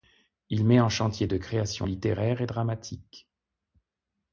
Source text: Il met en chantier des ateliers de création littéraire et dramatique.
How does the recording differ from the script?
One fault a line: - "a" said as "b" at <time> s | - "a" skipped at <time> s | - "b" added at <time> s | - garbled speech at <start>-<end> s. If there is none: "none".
- "des ateliers" skipped at 1.3 s